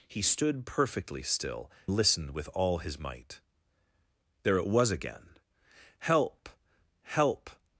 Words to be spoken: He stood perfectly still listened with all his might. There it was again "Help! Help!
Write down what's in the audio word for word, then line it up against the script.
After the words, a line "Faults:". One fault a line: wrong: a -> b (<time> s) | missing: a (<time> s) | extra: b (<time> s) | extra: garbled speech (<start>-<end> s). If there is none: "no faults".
He stood perfectly still listened with all his might. There it was again "Help! Help!
Faults:
no faults